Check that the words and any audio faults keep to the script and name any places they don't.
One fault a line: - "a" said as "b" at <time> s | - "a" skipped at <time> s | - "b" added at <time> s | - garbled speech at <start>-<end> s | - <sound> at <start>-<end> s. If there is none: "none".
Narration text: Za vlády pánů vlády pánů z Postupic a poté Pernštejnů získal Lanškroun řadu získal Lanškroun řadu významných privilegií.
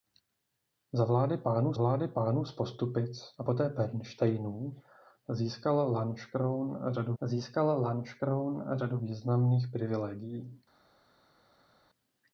none